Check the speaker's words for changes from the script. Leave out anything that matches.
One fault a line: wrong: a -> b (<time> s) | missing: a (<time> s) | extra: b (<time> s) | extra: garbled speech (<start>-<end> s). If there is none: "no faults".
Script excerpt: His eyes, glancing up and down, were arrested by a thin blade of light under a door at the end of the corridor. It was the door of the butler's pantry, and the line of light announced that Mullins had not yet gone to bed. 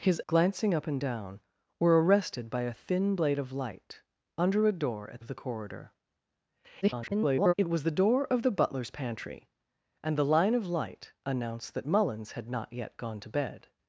missing: eyes (0.2 s)
missing: the end (5.2 s)
extra: garbled speech (6.8-7.5 s)